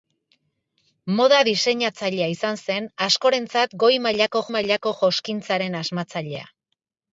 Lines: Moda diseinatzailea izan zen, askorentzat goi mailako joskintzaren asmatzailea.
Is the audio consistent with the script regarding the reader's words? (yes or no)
no